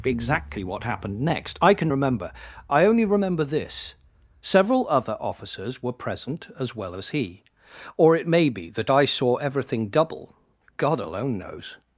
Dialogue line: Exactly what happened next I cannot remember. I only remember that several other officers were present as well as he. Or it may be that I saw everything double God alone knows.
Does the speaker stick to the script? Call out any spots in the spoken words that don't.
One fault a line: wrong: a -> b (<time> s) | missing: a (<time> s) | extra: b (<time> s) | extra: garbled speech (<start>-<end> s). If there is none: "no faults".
wrong: cannot -> can (1.7 s)
wrong: that -> this (3.4 s)